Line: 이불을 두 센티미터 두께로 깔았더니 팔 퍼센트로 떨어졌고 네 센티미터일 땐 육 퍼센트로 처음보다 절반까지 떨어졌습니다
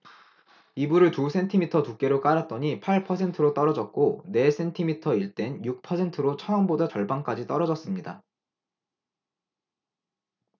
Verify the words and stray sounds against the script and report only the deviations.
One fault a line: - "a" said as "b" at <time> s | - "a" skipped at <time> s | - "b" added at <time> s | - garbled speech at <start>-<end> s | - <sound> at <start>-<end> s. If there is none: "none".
none